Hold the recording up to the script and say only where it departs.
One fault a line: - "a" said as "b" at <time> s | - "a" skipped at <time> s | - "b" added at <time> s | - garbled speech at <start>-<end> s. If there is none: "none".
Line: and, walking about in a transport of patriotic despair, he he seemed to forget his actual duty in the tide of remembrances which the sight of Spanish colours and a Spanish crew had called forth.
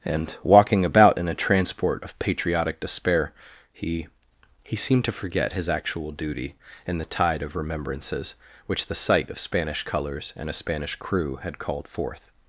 none